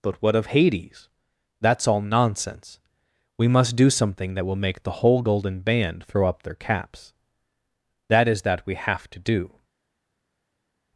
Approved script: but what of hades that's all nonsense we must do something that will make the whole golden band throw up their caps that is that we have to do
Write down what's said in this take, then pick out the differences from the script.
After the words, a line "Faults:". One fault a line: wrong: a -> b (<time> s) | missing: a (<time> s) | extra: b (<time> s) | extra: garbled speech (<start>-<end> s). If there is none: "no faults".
but what of hades that's all nonsense we must do something that will make the whole golden band throw up their caps that is that we have to do
Faults:
no faults